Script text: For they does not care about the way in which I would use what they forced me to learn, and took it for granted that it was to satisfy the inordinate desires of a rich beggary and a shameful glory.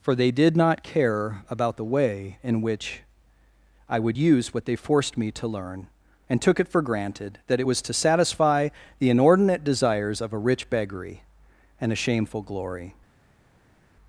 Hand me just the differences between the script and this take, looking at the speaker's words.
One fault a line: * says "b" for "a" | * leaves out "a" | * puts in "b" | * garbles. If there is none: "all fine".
* says "did" for "does"